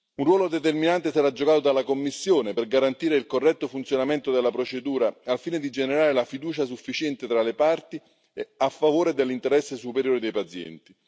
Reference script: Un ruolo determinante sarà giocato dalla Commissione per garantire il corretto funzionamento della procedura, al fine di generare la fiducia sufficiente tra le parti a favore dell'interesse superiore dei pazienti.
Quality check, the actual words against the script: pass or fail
pass